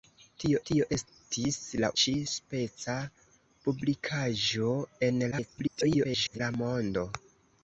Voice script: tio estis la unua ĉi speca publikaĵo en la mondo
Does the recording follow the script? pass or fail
fail